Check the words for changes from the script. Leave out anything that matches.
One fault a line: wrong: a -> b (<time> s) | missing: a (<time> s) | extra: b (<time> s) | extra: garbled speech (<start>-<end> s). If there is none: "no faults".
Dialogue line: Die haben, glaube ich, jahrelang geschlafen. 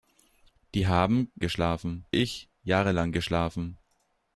wrong: glaube -> geschlafen (1.4 s)